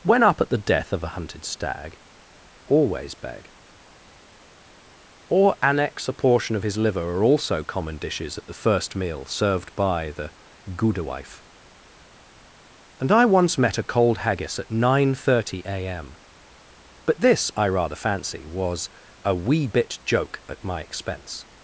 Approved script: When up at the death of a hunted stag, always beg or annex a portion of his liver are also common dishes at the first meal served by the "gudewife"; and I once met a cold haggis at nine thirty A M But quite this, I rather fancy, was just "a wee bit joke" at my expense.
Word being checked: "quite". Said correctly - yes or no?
no